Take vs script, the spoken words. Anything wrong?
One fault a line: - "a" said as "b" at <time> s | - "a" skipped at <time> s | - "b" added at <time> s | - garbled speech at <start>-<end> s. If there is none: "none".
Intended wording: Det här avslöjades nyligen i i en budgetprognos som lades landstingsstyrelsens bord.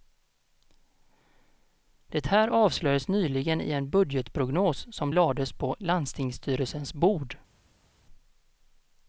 - "i" skipped at 3.7 s
- "på" added at 5.5 s